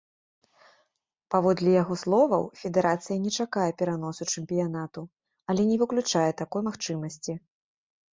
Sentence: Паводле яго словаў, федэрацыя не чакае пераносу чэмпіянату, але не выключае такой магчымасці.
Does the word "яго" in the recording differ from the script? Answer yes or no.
no